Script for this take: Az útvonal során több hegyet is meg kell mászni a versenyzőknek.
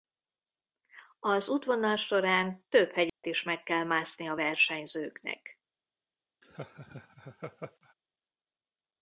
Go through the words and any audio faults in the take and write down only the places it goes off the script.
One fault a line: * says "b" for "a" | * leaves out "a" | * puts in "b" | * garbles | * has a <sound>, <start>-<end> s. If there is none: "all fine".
* has a dropout, 3.1-3.2 s
* has a laugh, 6.4-7.9 s